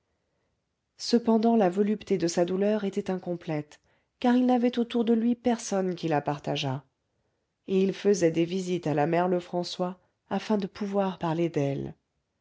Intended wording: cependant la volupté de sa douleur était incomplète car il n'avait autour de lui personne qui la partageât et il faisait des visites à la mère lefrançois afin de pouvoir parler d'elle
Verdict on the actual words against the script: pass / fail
pass